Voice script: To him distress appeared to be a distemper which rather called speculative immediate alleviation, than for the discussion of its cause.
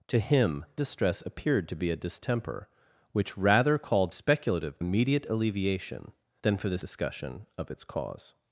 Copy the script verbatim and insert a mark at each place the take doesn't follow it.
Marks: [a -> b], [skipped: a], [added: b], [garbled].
To him distress appeared to be a distemper which rather called speculative immediate alleviation, than for the discussion of its cause.